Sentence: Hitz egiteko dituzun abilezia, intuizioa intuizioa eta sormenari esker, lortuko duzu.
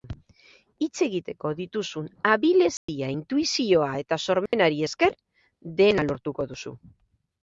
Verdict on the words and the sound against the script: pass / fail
fail